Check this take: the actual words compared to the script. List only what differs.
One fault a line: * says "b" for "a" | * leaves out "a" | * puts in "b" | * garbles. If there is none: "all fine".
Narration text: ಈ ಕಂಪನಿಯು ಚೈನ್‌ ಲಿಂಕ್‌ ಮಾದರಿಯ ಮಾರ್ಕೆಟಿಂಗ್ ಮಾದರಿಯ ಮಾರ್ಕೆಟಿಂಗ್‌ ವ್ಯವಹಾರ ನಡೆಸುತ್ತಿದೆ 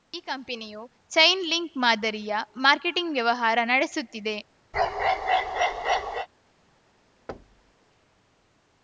* leaves out "ಮಾದರಿಯ ಮಾರ್ಕೆಟಿಂಗ್"